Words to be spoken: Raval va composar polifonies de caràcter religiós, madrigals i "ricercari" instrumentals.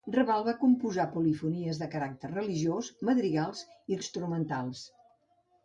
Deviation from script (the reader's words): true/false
true